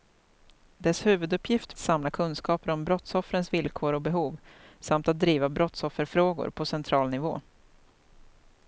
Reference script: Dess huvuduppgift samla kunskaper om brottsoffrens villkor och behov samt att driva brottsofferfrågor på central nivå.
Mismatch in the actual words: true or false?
false